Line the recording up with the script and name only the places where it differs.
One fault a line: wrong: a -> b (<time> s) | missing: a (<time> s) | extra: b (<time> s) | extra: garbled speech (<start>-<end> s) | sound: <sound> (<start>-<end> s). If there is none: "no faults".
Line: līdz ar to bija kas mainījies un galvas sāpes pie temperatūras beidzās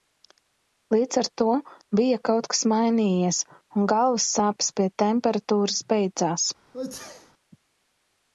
extra: kaut (2.3 s)
sound: sneeze (6.7-7.3 s)